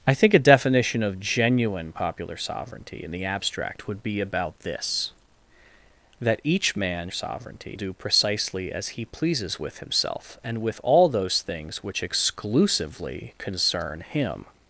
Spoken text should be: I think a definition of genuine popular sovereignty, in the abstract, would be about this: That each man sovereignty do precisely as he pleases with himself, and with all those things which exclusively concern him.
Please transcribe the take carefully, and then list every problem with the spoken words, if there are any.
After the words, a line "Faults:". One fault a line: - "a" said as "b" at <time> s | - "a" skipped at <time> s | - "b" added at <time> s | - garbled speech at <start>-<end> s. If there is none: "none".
I think a definition of genuine popular sovereignty, in the abstract, would be about this: That each man sovereignty do precisely as he pleases with himself, and with all those things which exclusively concern him.
Faults:
none